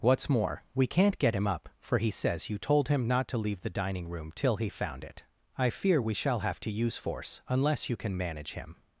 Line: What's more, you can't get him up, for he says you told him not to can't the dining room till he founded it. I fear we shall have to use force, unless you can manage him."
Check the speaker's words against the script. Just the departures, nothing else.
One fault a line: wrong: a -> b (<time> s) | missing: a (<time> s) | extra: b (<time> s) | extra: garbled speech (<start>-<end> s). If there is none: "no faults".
wrong: you -> we (0.7 s)
wrong: can't -> leave (3.4 s)
wrong: founded -> found (4.7 s)